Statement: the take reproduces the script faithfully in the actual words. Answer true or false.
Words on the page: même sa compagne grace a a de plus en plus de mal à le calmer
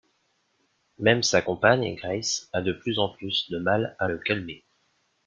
false